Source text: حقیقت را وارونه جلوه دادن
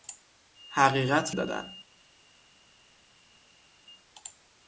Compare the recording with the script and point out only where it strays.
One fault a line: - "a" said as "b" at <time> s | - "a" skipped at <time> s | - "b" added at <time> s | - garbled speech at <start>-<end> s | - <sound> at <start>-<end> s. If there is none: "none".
- "را وارونه جلوه" skipped at 1.4 s